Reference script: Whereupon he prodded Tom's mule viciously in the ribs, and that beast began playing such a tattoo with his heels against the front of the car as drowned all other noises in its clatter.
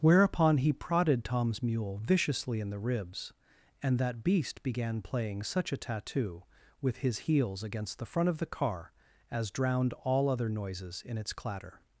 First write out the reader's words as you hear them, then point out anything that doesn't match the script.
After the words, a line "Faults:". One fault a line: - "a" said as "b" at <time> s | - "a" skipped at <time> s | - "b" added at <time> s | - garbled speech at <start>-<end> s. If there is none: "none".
Whereupon he prodded Tom's mule viciously in the ribs, and that beast began playing such a tattoo with his heels against the front of the car as drowned all other noises in its clatter.
Faults:
none